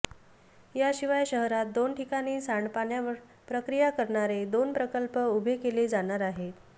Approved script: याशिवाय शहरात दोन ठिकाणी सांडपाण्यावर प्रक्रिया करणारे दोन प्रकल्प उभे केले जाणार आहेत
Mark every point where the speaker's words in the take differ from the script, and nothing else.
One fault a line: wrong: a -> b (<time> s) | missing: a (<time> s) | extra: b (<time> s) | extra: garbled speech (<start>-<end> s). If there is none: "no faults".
no faults